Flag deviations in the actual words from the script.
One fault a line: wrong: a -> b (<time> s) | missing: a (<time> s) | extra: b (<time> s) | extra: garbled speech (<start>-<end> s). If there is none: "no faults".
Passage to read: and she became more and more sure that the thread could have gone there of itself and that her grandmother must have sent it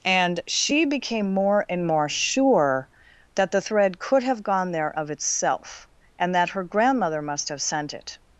no faults